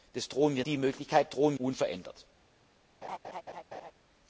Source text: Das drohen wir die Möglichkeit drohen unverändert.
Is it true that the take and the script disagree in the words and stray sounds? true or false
true